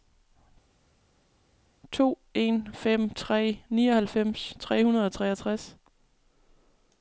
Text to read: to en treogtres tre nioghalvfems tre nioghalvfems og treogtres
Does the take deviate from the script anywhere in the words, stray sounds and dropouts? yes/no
yes